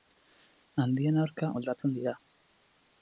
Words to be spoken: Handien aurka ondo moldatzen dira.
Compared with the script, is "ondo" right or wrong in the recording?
wrong